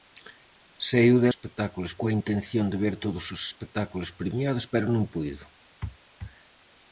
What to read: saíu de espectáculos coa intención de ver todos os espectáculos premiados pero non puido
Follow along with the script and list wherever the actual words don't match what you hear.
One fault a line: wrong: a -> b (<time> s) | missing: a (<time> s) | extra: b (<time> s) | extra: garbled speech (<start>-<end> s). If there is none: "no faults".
no faults